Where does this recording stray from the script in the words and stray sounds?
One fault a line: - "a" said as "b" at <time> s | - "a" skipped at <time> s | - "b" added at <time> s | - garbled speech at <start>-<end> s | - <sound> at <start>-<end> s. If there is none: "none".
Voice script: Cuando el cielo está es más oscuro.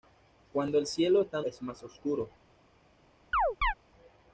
- chirp at 3.3-3.7 s